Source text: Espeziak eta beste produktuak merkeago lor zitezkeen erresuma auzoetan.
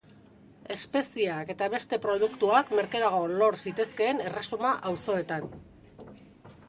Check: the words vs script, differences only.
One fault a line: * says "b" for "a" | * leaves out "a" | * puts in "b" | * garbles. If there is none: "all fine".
all fine